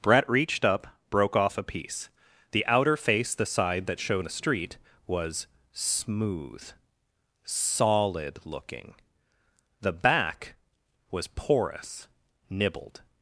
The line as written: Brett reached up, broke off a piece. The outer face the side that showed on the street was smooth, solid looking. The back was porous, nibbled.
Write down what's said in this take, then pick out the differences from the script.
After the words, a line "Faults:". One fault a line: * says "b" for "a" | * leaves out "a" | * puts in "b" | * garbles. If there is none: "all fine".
Brett reached up, broke off a piece. The outer face the side that showed the street was smooth, solid looking. The back was porous, nibbled.
Faults:
* leaves out "on"